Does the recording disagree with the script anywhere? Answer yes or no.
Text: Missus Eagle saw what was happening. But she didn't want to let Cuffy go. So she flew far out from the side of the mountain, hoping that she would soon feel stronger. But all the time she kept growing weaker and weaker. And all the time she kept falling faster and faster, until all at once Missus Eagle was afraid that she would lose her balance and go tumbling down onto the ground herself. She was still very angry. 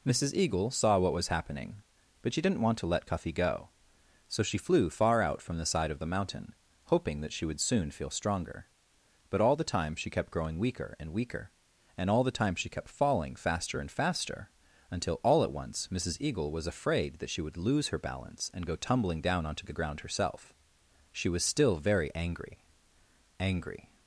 yes